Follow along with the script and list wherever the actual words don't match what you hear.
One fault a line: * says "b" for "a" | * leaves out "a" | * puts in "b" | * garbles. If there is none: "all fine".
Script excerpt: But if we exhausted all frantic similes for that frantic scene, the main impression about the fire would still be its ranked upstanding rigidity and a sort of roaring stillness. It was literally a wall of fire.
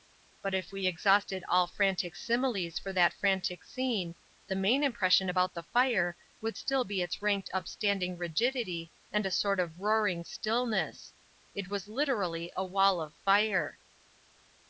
all fine